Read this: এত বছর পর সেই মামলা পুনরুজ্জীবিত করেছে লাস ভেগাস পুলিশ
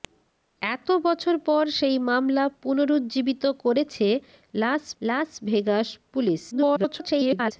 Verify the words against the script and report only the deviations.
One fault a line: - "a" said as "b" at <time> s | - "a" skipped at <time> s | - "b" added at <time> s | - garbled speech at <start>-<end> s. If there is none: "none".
- "লাস" added at 5.0 s
- garbled speech at 6.5-7.5 s